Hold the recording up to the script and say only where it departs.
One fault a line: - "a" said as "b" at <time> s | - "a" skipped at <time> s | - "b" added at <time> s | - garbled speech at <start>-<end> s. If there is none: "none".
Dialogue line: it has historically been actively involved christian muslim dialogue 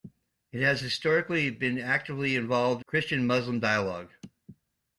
none